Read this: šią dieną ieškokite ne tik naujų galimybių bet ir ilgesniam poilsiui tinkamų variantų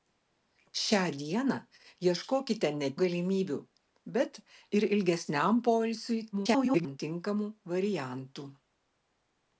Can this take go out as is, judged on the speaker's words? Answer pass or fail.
fail